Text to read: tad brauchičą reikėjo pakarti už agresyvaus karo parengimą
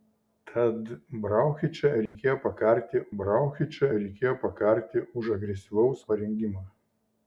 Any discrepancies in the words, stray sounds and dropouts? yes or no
yes